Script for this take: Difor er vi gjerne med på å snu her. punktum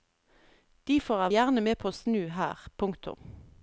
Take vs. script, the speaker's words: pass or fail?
fail